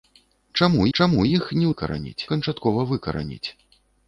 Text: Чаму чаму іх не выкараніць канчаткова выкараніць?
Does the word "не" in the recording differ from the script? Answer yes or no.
no